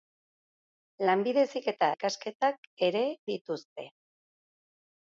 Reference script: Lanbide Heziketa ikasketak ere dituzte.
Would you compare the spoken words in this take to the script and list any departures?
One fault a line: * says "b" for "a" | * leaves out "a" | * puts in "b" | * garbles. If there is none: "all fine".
all fine